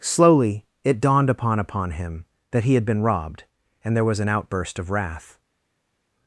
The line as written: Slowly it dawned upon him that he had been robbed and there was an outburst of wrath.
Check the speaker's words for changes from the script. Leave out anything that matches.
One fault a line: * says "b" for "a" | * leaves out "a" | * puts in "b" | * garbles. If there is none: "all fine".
* puts in "upon"